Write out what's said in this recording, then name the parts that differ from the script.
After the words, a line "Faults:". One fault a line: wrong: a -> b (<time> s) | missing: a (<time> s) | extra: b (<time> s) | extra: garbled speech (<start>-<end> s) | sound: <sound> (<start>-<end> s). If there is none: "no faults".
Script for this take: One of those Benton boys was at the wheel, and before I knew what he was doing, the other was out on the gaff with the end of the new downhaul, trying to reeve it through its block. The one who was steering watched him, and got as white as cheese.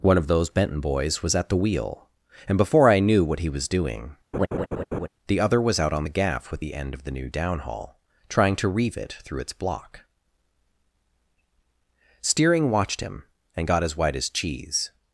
One of those Benton boys was at the wheel, and before I knew what he was doing, the other was out on the gaff with the end of the new downhaul, trying to reeve it through its block. steering watched him, and got as white as cheese.
Faults:
sound: laugh (4.3-5.1 s)
missing: The one who was (10.0 s)